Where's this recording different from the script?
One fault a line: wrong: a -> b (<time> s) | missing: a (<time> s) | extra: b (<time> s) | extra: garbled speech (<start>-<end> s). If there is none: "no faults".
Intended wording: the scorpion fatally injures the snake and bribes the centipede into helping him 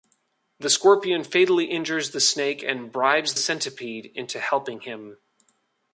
missing: the (3.4 s)